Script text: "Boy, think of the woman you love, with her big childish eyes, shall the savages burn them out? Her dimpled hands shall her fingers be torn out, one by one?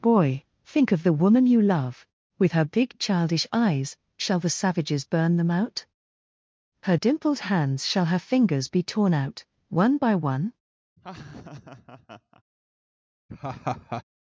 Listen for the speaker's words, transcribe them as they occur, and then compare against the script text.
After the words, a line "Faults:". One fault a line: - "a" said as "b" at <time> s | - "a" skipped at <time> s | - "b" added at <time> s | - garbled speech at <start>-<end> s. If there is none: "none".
"Boy, think of the woman you love, with her big childish eyes, shall the savages burn them out? Her dimpled hands shall her fingers be torn out, one by one?
Faults:
none